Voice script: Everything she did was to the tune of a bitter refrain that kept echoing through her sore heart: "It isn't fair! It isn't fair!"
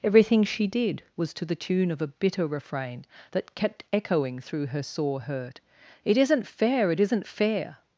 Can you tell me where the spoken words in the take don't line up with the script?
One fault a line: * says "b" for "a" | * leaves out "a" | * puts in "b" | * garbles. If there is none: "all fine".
* says "hurt" for "heart"